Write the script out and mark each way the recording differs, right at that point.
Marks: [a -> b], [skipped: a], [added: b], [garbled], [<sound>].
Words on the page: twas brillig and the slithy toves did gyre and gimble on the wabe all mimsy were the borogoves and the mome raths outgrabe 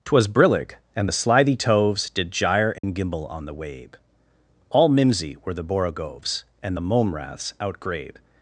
twas brillig and the slithy toves did gyre and [dropout] gimble on the wabe all mimsy were the borogoves and the mome raths outgrabe